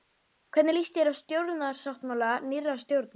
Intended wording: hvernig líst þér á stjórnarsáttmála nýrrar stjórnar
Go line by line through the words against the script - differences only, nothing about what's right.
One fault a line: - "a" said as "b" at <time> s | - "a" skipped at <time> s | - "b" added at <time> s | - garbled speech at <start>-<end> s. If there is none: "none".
none